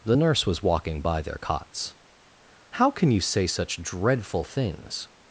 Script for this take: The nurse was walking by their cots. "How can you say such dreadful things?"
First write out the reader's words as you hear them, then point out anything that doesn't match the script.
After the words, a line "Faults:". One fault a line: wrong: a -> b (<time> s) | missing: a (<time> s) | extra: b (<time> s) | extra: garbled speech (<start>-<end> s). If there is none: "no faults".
The nurse was walking by their cots. "How can you say such dreadful things?"
Faults:
no faults